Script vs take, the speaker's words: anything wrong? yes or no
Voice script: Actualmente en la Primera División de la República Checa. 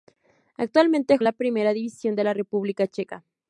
no